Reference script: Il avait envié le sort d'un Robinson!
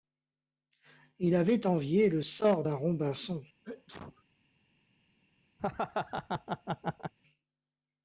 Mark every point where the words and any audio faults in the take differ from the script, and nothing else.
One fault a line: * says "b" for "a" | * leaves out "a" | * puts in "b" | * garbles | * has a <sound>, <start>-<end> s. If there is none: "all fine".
* has a sneeze, 3.6-4.2 s
* has a laugh, 5.6-7.1 s